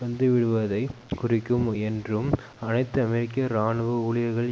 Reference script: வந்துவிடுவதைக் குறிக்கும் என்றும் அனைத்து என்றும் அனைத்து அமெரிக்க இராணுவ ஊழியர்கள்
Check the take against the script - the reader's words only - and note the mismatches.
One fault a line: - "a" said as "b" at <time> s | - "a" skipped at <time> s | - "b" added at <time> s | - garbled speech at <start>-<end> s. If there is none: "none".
- "என்றும் அனைத்து" skipped at 3.0 s